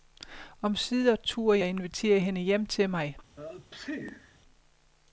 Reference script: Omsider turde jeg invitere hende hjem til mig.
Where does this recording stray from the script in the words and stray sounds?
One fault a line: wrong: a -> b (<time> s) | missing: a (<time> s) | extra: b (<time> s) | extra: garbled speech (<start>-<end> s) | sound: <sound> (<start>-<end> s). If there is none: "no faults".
sound: sneeze (3.4-4.4 s)